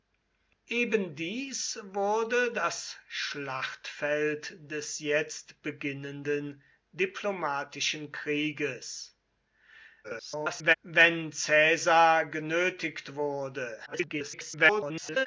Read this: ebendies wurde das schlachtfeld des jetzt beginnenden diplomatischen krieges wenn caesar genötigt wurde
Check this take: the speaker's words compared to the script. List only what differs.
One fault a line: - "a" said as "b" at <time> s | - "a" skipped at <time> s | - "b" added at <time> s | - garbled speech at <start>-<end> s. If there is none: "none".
- garbled speech at 10.0-10.7 s
- garbled speech at 13.9-15.3 s